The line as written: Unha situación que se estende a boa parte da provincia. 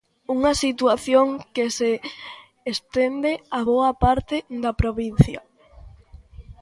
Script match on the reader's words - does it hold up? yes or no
yes